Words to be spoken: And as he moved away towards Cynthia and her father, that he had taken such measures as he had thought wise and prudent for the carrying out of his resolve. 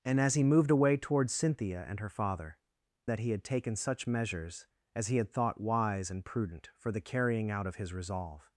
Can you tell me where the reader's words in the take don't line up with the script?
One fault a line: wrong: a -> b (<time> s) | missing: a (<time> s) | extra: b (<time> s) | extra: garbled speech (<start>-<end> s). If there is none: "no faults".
no faults